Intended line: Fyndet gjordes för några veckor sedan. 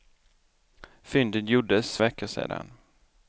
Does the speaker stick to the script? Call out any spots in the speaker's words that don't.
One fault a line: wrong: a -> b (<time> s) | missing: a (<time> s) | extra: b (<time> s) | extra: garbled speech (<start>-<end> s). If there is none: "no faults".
missing: för några (2.0 s)